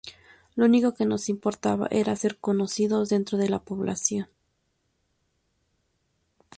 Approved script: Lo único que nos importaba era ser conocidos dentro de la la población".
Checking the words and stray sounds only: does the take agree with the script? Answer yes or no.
no